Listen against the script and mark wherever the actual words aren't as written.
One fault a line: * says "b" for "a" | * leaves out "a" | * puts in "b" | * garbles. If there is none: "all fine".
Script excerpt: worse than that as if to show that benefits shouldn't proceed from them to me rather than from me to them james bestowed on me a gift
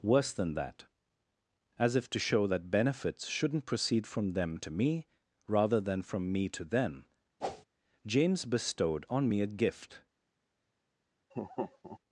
all fine